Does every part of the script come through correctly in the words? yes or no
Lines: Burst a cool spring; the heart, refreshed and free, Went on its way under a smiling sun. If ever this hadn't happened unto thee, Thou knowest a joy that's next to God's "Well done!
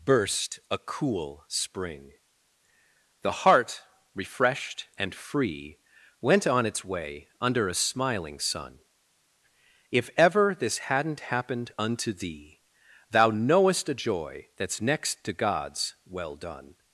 yes